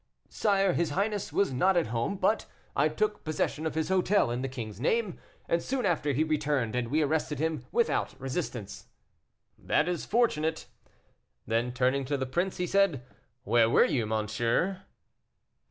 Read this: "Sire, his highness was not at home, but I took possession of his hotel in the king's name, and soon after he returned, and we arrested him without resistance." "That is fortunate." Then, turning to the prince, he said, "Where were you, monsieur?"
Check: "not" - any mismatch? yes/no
no